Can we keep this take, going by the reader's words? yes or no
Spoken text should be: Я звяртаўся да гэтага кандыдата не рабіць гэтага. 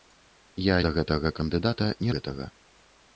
no